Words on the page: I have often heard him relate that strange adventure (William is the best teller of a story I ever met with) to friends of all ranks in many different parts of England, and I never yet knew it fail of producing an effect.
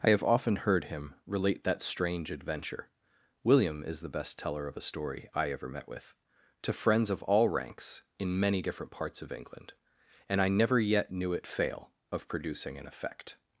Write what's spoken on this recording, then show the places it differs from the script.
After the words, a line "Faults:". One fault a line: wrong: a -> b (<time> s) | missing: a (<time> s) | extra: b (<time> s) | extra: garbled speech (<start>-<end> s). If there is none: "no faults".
I have often heard him relate that strange adventure (William is the best teller of a story I ever met with) to friends of all ranks in many different parts of England, and I never yet knew it fail of producing an effect.
Faults:
no faults